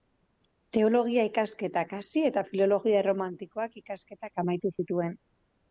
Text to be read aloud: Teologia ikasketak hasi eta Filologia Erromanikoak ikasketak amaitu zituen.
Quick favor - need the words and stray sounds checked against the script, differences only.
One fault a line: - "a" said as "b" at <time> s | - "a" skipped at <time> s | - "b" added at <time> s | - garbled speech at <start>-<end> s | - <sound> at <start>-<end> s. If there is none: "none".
none